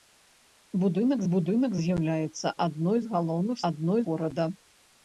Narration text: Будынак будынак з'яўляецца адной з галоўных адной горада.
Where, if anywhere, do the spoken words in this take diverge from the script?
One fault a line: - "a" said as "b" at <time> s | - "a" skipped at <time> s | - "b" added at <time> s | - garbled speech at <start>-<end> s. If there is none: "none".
none